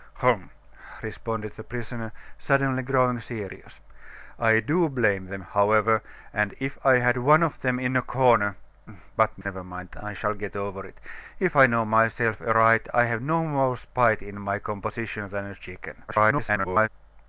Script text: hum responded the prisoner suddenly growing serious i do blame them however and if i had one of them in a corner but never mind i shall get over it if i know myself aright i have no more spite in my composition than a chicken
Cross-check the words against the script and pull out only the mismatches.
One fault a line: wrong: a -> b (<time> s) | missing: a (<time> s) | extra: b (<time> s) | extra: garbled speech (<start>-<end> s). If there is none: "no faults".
extra: garbled speech (16.1-16.9 s)